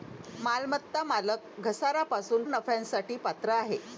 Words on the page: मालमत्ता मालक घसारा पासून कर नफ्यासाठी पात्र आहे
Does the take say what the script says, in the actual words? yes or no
no